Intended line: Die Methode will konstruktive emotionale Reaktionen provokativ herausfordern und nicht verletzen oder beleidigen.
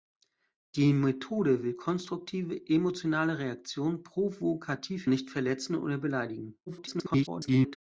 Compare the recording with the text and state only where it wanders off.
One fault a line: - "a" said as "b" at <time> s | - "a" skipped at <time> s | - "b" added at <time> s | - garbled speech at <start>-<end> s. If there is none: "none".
- "herausfordern und" skipped at 5.1 s
- garbled speech at 6.7-7.8 s